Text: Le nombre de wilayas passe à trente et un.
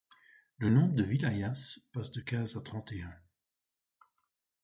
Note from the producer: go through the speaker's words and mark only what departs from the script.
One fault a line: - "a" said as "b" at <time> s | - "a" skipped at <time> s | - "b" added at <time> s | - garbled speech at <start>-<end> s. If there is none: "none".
- "de quinze" added at 2.1 s